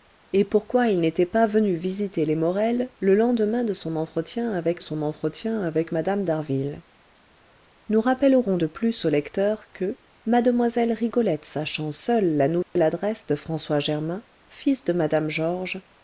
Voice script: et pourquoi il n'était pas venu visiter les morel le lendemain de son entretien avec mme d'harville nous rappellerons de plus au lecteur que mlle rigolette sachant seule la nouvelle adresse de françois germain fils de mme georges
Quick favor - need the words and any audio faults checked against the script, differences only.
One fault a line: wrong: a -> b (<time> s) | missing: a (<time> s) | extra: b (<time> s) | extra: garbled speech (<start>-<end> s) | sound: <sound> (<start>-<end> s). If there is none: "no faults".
extra: son entretien avec (4.8 s)
sound: dropout (12.6-12.8 s)